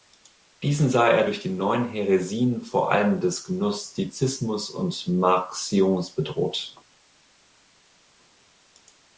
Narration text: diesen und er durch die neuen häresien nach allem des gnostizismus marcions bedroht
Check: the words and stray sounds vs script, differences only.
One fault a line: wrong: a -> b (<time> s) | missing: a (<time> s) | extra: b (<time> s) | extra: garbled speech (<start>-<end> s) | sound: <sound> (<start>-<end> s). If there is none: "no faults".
wrong: und -> sah (0.9 s)
wrong: nach -> vor (2.6 s)
extra: und (4.7 s)